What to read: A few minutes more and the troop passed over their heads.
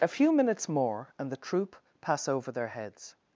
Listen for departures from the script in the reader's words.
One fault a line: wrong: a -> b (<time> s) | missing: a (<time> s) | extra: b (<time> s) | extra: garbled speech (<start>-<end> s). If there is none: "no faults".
wrong: passed -> pass (2.0 s)